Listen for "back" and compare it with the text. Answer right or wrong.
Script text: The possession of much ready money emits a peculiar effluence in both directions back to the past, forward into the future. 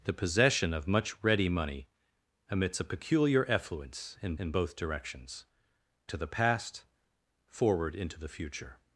wrong